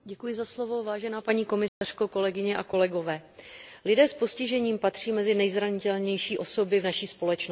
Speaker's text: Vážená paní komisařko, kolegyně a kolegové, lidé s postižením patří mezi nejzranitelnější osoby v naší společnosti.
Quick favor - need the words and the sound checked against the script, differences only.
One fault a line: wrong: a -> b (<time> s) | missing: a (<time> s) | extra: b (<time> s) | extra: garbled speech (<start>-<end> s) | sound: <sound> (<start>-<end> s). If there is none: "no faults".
sound: dropout (1.7-1.8 s)